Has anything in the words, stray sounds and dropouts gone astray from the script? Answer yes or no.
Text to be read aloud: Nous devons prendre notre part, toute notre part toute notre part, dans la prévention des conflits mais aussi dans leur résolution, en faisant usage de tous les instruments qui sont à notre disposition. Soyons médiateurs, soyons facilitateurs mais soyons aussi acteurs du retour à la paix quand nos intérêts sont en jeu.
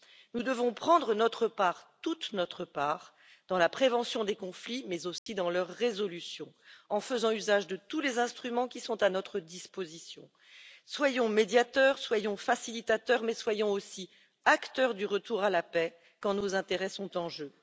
yes